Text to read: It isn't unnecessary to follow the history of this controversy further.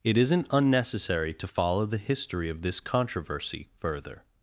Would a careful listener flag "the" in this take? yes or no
no